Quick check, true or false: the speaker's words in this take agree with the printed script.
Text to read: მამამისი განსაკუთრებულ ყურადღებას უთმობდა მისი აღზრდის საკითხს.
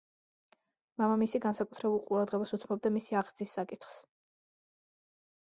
true